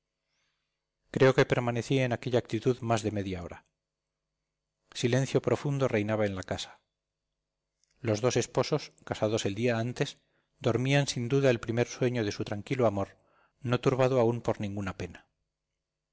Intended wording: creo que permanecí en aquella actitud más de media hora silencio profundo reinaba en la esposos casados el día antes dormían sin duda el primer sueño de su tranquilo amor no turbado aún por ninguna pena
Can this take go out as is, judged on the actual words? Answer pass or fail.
fail